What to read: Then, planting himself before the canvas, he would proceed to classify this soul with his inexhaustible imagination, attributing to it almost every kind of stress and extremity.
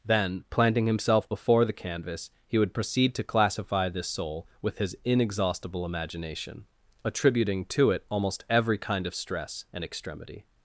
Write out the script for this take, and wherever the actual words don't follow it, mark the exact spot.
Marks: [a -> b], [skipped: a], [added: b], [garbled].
Then, planting himself before the canvas, he would proceed to classify this soul with his inexhaustible imagination, attributing to it almost every kind of stress and extremity.